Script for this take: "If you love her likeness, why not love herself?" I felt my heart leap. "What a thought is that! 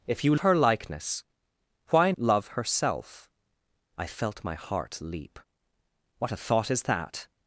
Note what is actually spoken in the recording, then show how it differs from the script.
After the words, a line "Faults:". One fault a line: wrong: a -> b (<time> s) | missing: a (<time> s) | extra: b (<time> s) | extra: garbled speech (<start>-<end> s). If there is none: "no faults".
"If you her likeness, why love herself?" I felt my heart leap. "What a thought is that!
Faults:
missing: love (0.3 s)
missing: not (2.1 s)